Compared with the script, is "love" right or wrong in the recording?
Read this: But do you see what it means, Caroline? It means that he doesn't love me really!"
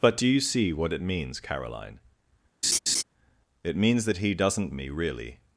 wrong